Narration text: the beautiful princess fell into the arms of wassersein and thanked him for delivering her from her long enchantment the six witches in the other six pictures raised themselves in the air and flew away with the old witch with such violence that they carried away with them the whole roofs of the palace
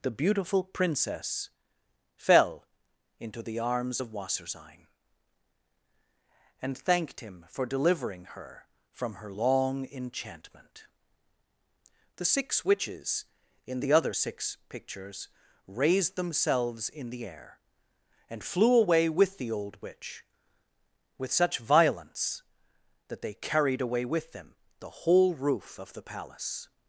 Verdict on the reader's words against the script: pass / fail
fail